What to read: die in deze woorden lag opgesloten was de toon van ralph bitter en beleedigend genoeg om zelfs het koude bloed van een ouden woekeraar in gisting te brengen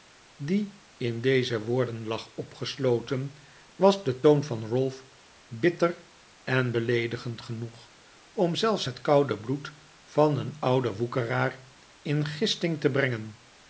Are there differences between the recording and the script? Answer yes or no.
no